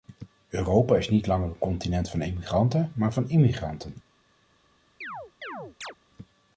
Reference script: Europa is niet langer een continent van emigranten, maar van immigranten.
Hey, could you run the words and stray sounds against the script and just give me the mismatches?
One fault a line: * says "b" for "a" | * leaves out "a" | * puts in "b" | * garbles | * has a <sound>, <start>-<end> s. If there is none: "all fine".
* has a chirp, 5.0-5.9 s